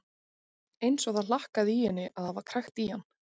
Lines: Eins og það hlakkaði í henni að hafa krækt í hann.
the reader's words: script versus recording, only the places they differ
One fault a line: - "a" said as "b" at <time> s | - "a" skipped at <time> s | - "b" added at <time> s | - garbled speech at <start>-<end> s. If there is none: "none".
none